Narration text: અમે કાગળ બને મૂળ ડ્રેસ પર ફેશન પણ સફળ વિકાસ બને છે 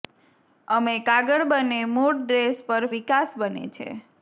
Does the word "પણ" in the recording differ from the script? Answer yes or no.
yes